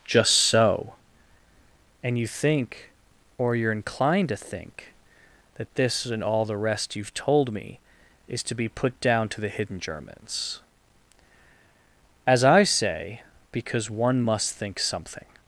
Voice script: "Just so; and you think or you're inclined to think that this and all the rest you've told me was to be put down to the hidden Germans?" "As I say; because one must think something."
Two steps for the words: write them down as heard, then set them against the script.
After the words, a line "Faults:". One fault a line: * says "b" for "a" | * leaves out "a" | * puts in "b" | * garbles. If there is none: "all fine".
"Just so; and you think or you're inclined to think that this and all the rest you've told me is to be put down to the hidden Germans?" "As I say; because one must think something."
Faults:
* says "is" for "was"